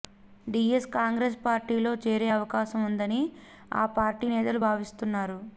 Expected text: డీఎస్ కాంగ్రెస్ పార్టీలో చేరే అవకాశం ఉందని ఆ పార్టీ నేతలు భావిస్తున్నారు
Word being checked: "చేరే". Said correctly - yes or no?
yes